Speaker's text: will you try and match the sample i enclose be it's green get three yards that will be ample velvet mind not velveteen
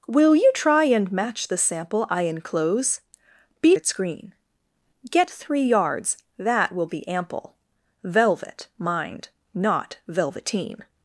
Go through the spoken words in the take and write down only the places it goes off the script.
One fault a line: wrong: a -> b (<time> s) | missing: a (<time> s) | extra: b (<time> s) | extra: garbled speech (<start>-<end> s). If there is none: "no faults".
no faults